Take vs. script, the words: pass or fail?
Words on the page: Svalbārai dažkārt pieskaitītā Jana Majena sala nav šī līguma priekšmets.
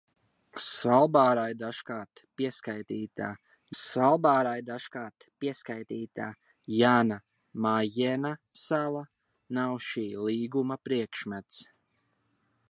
fail